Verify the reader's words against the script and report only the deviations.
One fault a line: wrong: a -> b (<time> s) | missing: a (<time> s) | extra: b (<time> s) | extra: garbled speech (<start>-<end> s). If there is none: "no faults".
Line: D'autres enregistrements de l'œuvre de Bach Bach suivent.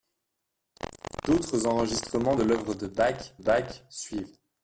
no faults